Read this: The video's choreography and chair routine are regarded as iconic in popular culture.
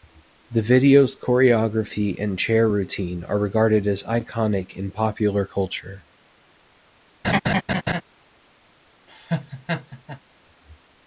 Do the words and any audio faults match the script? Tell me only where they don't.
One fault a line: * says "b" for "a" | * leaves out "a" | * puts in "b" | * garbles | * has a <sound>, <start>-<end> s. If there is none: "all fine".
* has a laugh, 7.2-8.0 s
* has a laugh, 9.1-10.2 s